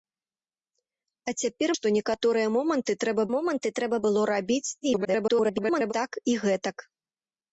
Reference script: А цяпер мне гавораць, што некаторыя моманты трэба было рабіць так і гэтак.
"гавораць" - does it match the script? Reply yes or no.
no